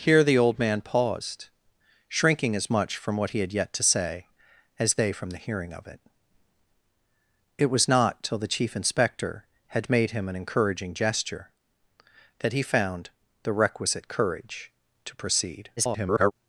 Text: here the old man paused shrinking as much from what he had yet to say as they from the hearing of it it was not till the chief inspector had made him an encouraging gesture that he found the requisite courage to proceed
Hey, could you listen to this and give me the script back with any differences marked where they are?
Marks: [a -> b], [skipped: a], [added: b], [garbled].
here the old man paused shrinking as much from what he had yet to say as they from the hearing of it it was not till the chief inspector had made him an encouraging gesture that he found the requisite courage to proceed [garbled]